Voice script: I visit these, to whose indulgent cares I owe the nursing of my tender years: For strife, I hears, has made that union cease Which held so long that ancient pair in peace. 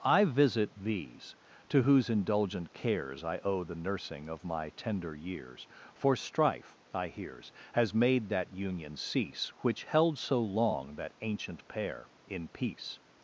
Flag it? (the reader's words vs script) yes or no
no